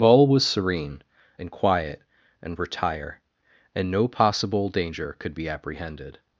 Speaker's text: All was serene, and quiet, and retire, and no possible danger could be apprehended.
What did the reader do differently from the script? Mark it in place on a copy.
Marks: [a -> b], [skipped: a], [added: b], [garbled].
All was serene, and quiet, and retire, and no possible danger could be apprehended.